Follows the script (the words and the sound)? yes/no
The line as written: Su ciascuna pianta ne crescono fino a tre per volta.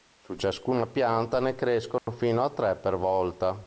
no